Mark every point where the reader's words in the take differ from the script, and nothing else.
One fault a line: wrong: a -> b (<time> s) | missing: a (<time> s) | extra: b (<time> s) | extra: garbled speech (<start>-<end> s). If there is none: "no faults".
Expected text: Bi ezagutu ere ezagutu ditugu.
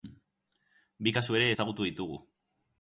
wrong: ezagutu -> kasu (1.2 s)